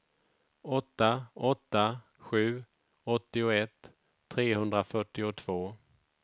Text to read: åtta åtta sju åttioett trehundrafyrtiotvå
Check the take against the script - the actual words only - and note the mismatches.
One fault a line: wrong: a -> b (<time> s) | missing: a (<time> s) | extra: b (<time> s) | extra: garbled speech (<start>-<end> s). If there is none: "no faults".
no faults